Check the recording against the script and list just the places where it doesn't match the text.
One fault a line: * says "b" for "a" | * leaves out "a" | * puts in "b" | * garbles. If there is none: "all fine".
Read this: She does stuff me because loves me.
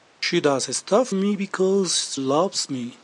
all fine